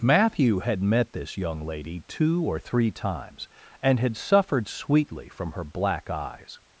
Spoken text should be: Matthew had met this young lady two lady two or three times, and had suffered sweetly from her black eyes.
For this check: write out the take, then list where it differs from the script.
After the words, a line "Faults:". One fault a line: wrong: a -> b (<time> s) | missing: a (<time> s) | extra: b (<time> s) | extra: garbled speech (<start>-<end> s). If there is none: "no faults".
Matthew had met this young lady two or three times, and had suffered sweetly from her black eyes.
Faults:
missing: lady two (2.4 s)